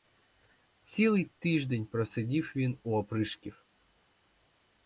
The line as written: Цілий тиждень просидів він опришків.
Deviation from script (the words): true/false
true